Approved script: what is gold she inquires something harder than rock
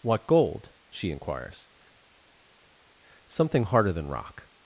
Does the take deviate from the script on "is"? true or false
true